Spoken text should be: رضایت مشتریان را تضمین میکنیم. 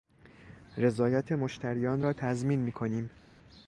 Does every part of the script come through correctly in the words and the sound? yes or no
yes